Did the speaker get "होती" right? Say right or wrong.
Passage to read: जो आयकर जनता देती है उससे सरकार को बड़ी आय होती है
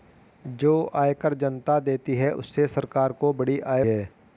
wrong